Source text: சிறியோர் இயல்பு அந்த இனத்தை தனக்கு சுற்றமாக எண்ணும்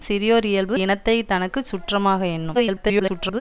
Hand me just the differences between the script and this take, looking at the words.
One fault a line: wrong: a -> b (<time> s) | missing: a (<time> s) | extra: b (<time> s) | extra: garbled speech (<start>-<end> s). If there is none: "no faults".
missing: அந்த (0.8 s)
extra: garbled speech (2.5-3.4 s)